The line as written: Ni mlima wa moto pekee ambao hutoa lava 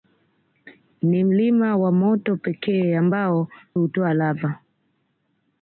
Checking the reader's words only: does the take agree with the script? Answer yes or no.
yes